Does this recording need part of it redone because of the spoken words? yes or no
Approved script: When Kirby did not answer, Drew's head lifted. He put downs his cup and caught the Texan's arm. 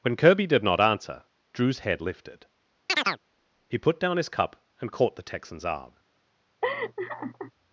yes